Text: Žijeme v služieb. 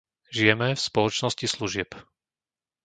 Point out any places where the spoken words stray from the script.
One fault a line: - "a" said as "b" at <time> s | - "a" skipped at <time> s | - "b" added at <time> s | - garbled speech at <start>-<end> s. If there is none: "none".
- "spoločnosti" added at 0.8 s